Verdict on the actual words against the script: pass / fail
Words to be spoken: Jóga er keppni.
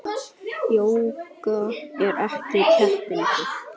fail